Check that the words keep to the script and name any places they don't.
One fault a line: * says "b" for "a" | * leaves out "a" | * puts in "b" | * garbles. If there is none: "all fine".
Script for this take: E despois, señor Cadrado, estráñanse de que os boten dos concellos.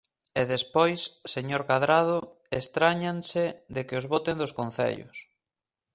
all fine